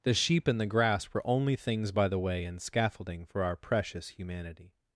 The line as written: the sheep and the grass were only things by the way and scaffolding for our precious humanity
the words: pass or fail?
pass